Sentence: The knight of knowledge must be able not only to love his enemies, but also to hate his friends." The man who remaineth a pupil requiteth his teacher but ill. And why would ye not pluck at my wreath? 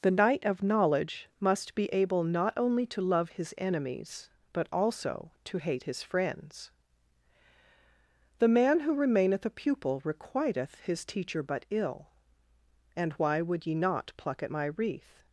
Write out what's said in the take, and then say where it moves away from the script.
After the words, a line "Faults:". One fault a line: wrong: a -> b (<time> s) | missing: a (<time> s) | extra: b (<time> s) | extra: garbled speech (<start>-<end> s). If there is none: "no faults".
The knight of knowledge must be able not only to love his enemies, but also to hate his friends." The man who remaineth a pupil requiteth his teacher but ill. And why would ye not pluck at my wreath?
Faults:
no faults